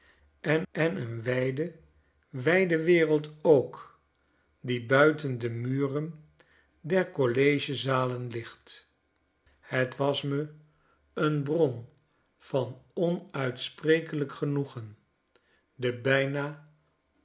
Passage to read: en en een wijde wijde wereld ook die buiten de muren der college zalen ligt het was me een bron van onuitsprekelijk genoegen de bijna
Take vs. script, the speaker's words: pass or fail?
pass